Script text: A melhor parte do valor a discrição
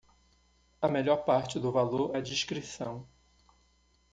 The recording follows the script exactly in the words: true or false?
true